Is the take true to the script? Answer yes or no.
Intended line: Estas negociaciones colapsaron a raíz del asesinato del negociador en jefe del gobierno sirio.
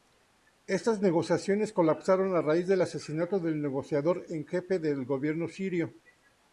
yes